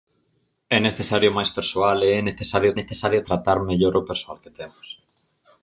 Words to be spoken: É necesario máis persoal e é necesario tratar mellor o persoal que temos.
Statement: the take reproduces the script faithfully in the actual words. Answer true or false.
false